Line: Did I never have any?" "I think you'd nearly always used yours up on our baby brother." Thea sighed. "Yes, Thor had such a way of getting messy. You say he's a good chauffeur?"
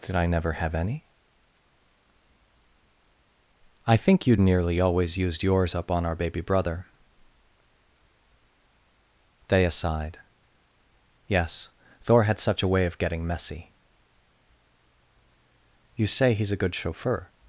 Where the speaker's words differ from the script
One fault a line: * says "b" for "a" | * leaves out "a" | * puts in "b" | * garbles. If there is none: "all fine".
all fine